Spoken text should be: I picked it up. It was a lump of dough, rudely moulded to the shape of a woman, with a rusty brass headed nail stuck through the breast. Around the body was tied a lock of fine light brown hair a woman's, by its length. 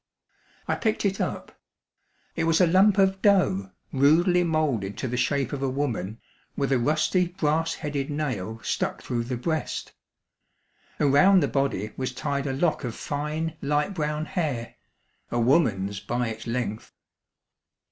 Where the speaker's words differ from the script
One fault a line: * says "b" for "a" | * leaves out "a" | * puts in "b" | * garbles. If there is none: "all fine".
all fine